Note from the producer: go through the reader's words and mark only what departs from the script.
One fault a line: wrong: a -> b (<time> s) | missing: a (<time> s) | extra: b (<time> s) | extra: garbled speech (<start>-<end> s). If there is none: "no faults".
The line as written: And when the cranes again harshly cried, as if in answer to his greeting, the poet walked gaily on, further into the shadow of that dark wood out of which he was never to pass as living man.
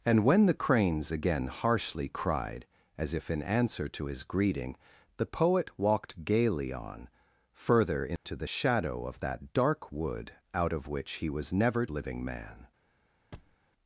missing: to pass as (11.8 s)